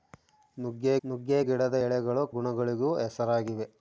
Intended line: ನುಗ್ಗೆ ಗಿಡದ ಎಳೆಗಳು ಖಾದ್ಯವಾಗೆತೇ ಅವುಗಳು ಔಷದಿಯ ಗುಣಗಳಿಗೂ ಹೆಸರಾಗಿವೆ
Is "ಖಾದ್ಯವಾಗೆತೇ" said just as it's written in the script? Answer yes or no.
no